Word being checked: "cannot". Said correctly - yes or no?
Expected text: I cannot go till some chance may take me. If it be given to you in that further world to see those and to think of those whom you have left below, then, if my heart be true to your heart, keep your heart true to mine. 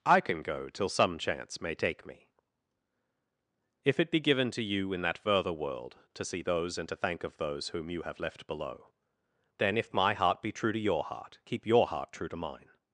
no